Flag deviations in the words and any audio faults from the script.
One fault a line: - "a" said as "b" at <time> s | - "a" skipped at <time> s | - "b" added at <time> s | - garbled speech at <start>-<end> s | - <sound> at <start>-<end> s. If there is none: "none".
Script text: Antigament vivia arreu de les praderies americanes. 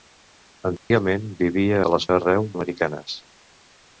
- dropout at 0.8-0.9 s
- "arreu" skipped at 1.8 s
- "praderies" said as "arreu" at 2.1 s